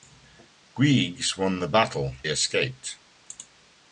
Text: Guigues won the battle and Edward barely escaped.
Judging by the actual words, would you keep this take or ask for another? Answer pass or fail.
fail